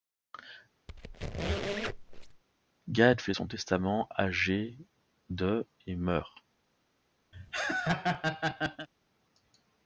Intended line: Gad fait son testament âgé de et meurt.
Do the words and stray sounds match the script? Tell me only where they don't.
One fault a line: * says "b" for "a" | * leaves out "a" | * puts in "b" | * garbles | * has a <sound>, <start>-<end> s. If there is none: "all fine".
* has a squeak, 0.9-2.4 s
* has a laugh, 7.3-8.9 s